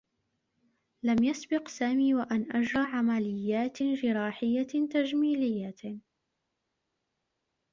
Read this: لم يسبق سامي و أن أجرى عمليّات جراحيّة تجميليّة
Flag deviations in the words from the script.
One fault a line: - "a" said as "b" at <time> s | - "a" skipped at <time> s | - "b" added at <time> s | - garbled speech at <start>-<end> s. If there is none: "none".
none